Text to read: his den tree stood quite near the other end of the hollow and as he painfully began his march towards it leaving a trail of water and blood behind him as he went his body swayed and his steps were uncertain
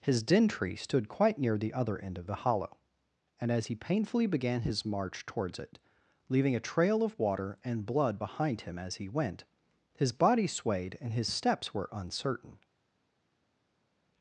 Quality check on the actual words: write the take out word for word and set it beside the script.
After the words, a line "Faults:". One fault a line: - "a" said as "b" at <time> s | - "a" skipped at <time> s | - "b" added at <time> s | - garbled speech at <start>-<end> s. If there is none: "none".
his den tree stood quite near the other end of the hollow and as he painfully began his march towards it leaving a trail of water and blood behind him as he went his body swayed and his steps were uncertain
Faults:
none